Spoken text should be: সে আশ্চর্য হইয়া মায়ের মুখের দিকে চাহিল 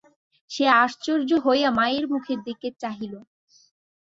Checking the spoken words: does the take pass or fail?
pass